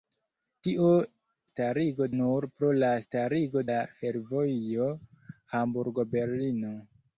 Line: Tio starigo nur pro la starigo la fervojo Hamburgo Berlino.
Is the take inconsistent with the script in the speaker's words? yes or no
no